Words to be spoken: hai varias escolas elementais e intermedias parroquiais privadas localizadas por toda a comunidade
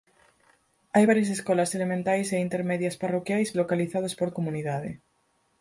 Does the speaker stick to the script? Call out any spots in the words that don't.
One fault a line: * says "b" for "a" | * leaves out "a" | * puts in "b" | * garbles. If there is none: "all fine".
* leaves out "privadas"
* leaves out "toda"